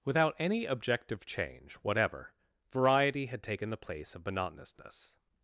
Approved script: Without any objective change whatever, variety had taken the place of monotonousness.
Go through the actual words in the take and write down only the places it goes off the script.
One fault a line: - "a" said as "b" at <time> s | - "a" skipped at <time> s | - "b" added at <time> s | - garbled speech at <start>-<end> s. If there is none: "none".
none